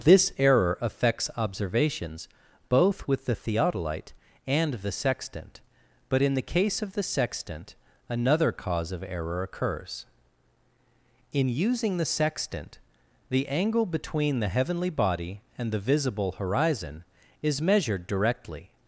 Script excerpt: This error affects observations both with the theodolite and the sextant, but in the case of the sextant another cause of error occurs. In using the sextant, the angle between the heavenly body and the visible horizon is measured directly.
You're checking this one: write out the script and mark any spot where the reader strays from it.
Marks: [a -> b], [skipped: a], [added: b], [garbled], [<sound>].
This error affects observations both with the theodolite and the sextant, but in the case of the sextant another cause of error occurs. In using the sextant, the angle between the heavenly body and the visible horizon is measured directly.